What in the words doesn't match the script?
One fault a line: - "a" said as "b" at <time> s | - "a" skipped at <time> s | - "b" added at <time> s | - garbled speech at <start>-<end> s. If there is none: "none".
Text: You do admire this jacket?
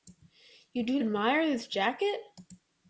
none